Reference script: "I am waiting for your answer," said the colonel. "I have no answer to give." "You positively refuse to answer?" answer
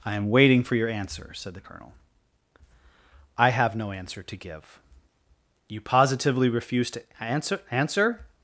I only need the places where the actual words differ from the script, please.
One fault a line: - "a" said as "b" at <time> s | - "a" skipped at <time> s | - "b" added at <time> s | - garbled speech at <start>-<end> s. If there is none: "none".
none